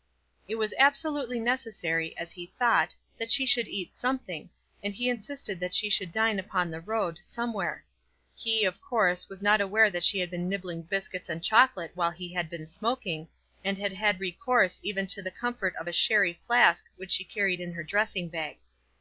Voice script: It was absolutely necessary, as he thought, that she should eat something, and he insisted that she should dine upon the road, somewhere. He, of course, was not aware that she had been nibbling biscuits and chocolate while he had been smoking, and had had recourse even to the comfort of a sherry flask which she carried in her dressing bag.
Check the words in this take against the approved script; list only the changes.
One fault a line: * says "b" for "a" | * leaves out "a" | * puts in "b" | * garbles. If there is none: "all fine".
all fine